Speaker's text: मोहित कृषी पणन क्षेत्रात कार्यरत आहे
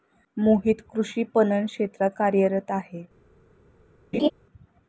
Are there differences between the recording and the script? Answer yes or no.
no